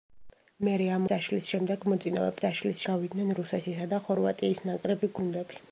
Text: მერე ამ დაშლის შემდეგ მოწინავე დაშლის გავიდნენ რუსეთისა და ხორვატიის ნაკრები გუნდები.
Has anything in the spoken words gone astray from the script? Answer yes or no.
no